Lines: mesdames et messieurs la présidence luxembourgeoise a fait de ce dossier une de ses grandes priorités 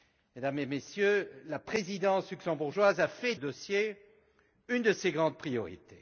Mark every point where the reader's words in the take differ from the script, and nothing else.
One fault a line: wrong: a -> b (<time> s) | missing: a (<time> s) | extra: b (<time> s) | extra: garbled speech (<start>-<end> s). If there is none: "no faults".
missing: de ce (3.4 s)